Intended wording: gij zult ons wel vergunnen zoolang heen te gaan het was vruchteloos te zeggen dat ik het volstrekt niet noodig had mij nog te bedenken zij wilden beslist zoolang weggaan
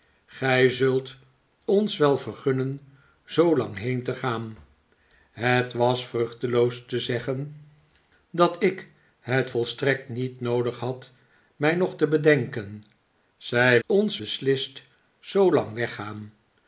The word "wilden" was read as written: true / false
false